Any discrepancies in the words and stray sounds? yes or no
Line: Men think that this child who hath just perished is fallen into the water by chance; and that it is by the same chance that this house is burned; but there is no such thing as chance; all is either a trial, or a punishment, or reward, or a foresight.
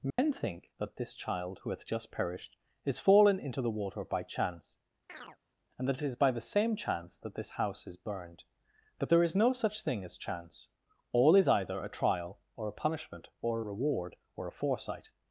yes